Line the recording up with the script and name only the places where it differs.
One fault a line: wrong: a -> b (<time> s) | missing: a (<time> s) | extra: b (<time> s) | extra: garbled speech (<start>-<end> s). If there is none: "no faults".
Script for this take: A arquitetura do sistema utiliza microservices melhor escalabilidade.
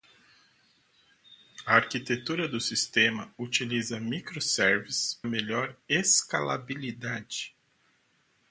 no faults